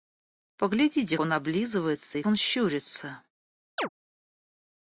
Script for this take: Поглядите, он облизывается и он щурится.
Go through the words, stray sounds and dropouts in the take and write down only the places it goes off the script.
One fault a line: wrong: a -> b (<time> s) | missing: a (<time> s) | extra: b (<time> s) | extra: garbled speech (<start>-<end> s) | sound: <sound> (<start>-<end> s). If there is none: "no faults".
sound: chirp (3.8-3.9 s)